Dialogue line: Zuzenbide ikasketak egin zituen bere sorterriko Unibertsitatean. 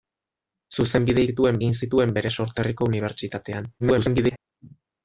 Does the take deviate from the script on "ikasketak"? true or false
true